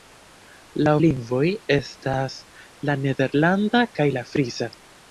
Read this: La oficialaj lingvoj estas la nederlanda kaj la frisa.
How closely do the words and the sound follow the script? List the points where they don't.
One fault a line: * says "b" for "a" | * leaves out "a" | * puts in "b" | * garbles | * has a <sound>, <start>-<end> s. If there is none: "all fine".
* leaves out "oficialaj"